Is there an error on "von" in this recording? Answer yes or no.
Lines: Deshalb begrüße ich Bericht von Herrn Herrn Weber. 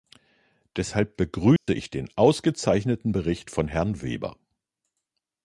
no